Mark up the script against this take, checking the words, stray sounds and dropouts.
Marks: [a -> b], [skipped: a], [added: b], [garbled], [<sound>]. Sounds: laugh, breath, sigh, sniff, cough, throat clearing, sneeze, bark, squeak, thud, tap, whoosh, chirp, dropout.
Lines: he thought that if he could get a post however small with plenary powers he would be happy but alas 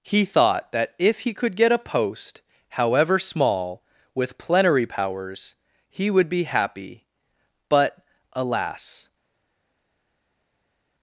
he thought that if he could get a post however small with plenary powers he would be happy but alas